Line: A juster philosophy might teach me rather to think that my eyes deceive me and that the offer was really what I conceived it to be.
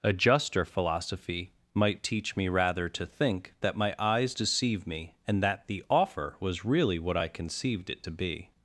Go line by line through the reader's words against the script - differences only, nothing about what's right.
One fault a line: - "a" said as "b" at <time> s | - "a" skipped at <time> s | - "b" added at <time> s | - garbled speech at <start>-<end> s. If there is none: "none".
none